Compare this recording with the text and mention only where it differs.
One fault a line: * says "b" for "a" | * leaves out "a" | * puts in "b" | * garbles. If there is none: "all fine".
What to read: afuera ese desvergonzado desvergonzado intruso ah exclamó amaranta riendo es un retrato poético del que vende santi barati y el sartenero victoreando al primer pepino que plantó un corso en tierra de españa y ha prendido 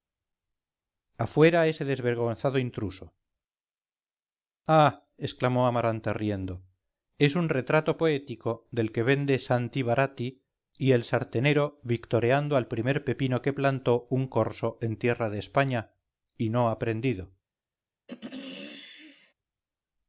* leaves out "desvergonzado"
* puts in "no"